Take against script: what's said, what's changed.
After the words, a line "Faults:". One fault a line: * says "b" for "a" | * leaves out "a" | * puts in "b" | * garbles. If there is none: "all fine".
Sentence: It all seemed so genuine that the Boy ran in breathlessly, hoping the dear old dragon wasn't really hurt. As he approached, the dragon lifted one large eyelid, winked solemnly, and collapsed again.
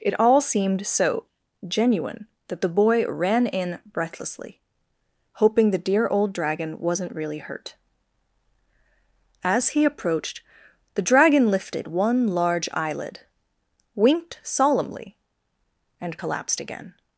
It all seemed so genuine that the Boy ran in breathlessly, hoping the dear old dragon wasn't really hurt. As he approached, the dragon lifted one large eyelid, winked solemnly, and collapsed again.
Faults:
all fine